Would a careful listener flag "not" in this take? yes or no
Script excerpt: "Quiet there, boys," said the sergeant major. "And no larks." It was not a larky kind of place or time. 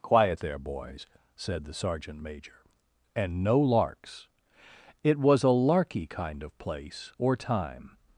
yes